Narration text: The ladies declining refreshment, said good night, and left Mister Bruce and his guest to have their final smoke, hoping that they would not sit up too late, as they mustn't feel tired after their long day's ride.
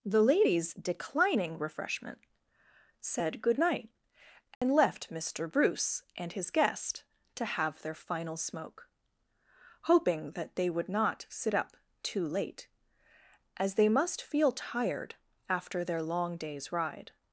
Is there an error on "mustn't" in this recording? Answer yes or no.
yes